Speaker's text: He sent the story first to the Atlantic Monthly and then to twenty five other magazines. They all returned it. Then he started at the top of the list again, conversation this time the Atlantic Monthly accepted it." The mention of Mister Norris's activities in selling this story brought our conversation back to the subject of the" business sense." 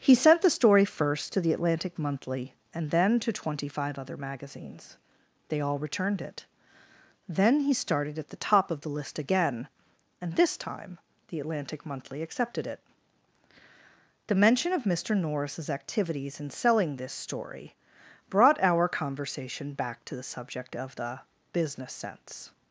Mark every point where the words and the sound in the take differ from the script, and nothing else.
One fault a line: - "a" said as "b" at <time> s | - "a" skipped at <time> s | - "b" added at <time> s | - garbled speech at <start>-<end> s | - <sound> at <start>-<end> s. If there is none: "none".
- "conversation" said as "and" at 10.2 s